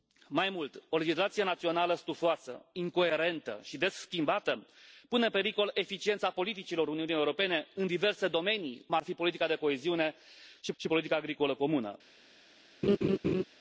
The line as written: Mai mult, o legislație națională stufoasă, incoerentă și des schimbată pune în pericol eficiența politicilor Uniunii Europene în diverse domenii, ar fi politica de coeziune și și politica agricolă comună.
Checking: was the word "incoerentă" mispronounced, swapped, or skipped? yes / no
no